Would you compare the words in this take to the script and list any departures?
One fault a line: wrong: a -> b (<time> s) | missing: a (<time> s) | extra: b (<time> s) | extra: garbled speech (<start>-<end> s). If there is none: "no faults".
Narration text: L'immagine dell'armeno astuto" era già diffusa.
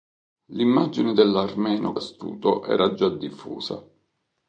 no faults